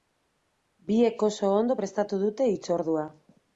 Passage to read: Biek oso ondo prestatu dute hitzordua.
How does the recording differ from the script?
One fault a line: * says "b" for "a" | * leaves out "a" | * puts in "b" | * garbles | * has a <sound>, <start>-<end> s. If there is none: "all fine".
all fine